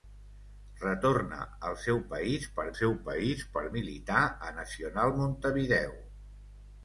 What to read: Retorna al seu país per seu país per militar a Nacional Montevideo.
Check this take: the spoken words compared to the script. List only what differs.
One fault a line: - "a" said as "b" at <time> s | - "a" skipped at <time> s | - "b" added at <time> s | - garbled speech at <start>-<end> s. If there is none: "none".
none